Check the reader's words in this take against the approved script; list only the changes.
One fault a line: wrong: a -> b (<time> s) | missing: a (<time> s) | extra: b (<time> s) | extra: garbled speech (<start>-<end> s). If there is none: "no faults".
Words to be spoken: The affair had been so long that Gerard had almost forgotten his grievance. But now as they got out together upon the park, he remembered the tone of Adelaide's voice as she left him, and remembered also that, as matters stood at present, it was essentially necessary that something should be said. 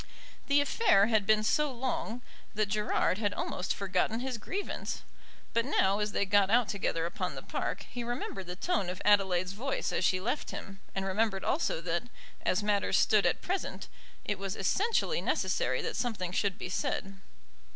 no faults